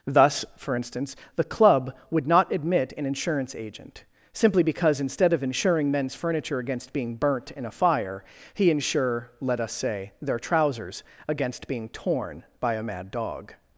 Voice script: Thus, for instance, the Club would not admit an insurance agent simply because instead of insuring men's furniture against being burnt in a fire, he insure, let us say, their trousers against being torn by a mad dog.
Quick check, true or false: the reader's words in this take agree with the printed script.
true